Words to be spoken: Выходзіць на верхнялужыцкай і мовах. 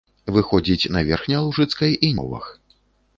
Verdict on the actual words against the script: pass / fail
pass